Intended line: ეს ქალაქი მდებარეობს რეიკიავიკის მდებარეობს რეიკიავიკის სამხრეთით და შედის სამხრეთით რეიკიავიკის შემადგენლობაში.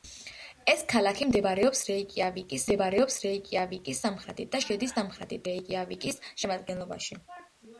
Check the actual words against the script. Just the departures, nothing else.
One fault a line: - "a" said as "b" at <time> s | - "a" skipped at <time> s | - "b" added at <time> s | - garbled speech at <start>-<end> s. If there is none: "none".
none